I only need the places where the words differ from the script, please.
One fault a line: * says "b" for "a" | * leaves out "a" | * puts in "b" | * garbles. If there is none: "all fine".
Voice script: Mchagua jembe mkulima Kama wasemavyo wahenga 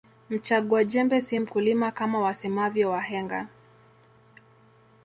* puts in "si"